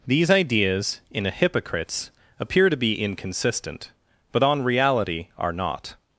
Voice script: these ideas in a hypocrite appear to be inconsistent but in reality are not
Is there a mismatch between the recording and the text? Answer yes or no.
yes